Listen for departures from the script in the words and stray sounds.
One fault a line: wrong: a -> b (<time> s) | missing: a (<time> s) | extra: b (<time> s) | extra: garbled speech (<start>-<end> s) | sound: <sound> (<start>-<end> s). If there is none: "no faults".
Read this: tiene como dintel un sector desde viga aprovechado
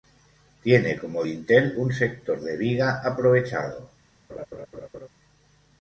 wrong: desde -> de (2.4 s)
sound: laugh (4.3-5.1 s)